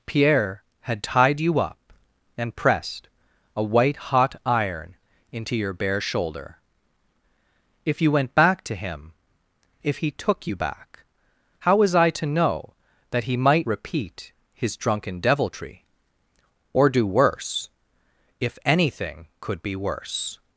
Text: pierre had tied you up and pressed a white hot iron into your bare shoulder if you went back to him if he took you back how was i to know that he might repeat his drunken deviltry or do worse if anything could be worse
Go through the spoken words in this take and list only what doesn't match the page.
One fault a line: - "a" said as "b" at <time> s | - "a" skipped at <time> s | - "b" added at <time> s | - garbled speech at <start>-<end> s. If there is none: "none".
none